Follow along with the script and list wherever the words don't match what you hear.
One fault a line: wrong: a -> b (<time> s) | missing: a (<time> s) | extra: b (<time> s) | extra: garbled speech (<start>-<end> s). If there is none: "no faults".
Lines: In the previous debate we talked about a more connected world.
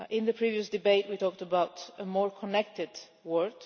no faults